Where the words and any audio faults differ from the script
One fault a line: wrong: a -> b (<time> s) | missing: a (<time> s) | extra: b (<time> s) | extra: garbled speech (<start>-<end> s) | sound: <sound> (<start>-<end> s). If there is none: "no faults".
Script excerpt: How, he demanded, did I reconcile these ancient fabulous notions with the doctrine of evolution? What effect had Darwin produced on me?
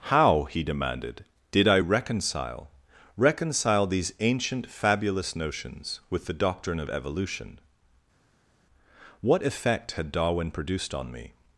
extra: reconcile (3.2 s)